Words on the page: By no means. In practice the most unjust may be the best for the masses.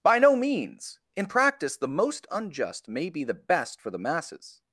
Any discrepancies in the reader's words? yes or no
no